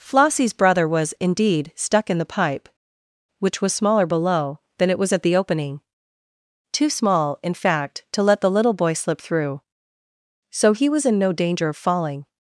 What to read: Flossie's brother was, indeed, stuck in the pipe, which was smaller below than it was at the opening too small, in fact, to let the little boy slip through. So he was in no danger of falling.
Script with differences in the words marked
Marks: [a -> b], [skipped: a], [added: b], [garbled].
Flossie's brother was, indeed, stuck in the pipe, which was smaller below than it was at the opening too small, in fact, to let the little boy slip through. So he was in no danger of falling.